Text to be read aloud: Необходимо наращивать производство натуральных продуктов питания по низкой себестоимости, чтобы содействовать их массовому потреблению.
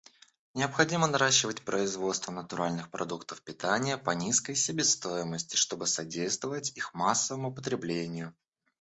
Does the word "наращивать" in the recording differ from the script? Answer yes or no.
no